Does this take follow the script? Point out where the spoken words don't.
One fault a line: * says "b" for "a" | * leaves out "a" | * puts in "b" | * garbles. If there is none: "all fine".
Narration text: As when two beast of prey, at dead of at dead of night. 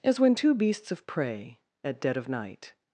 * says "beasts" for "beast"
* leaves out "at dead of"